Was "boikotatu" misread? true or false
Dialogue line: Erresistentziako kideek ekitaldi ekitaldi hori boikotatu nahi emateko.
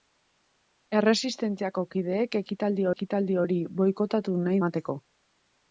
false